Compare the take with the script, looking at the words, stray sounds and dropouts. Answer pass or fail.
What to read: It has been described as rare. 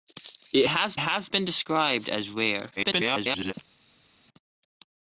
fail